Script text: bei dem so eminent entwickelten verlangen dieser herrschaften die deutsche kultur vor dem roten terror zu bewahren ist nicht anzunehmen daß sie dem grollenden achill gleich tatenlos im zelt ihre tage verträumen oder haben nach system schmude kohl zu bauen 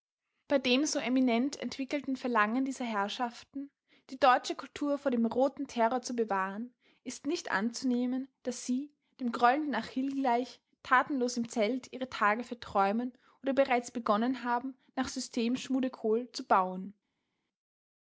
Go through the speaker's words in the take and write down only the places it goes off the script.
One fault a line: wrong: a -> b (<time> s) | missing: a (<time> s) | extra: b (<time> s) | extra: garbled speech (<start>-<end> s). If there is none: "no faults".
extra: bereits begonnen (13.5 s)